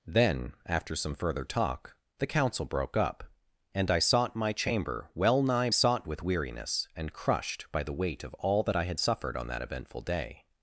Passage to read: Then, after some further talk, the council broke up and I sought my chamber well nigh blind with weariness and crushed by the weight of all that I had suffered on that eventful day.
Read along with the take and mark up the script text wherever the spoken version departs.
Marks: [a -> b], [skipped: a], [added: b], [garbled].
Then, after some further talk, the council broke up and I sought my chamber well nigh [blind -> sought] with weariness and crushed by the weight of all that I had suffered on that eventful day.